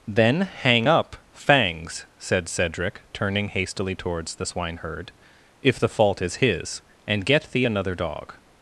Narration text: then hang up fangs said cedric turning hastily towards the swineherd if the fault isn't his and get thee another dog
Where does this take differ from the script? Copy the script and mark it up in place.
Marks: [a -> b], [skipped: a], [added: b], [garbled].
then hang up fangs said cedric turning hastily towards the swineherd if the fault [isn't -> is] his and get thee another dog